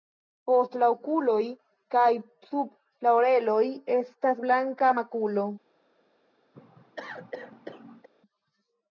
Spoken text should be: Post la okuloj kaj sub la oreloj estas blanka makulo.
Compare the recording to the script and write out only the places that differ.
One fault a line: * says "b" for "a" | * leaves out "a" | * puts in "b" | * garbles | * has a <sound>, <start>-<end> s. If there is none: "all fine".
* has a cough, 6.5-8.1 s